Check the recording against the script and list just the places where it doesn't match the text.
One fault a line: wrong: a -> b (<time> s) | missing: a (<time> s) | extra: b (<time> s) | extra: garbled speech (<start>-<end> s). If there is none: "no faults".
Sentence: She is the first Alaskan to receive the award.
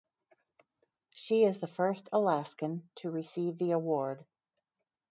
no faults